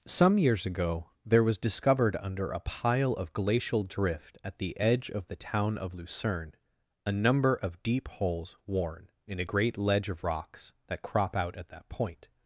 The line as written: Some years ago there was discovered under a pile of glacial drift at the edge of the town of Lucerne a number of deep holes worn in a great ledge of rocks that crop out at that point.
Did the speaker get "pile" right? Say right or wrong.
right